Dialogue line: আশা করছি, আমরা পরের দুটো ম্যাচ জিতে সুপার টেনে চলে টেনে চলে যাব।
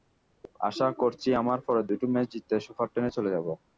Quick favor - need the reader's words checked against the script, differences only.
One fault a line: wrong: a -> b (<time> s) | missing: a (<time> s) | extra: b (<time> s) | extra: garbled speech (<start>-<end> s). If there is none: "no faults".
missing: টেনে চলে (3.3 s)